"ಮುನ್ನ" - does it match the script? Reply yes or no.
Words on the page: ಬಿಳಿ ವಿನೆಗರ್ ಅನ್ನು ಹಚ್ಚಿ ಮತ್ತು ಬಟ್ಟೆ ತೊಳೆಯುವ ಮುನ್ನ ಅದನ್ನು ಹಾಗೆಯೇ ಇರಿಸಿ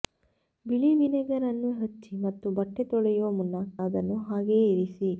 yes